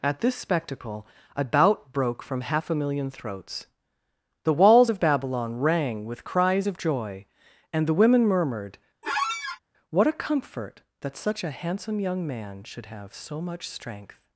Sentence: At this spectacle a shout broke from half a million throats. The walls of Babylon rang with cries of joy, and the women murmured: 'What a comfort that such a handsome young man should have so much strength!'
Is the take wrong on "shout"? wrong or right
wrong